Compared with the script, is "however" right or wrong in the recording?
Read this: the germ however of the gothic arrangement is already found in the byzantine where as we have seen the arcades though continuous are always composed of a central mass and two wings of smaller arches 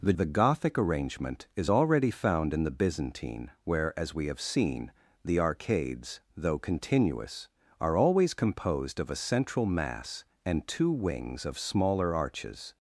wrong